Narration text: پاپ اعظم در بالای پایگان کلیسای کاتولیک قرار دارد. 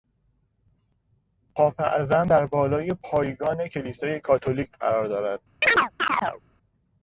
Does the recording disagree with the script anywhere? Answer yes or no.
no